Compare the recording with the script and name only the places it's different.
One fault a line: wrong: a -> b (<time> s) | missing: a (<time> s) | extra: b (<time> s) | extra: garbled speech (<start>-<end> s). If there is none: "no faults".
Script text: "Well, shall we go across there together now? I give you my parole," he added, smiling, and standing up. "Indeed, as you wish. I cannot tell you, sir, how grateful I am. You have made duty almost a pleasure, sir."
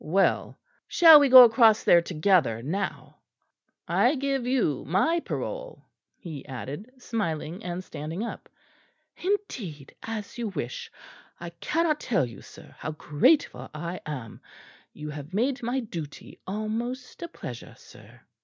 extra: my (15.6 s)